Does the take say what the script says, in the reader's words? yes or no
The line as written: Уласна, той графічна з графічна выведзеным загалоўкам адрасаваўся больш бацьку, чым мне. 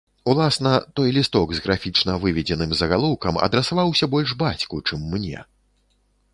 no